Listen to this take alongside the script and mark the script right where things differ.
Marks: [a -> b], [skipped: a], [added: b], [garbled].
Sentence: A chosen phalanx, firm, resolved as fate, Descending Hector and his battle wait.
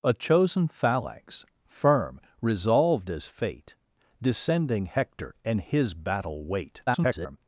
A chosen phalanx, firm, resolved as fate, Descending Hector and his battle wait. [garbled]